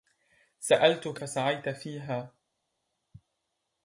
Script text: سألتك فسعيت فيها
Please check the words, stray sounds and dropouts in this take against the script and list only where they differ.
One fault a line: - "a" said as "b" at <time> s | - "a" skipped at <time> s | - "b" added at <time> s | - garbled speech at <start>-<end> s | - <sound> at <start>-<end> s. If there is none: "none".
none